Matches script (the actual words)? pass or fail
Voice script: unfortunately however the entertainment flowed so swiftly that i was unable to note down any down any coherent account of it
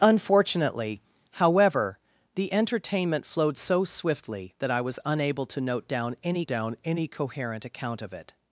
pass